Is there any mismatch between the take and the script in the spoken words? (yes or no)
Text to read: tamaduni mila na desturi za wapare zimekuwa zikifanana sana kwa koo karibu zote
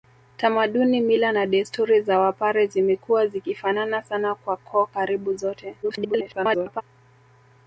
yes